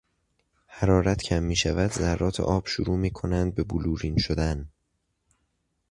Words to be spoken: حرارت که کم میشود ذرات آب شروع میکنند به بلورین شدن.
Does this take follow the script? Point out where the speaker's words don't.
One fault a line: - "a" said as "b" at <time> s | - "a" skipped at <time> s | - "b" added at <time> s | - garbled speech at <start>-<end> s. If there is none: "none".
- "که" skipped at 1.2 s